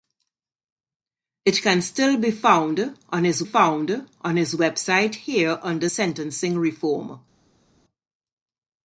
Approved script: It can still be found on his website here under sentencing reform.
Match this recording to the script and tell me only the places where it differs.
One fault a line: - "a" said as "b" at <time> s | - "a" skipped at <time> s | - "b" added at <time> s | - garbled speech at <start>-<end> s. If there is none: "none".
- "found on his" added at 3.4 s